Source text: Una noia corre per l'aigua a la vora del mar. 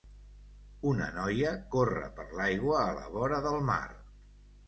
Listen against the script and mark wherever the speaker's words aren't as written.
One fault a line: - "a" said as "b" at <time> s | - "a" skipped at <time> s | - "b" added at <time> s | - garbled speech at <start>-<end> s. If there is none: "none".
none